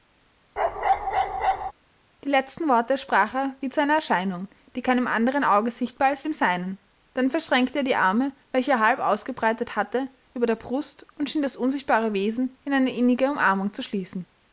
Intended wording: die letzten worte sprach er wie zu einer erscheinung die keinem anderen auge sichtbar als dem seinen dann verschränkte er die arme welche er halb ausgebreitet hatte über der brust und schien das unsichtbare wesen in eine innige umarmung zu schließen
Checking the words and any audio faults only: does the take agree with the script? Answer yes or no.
no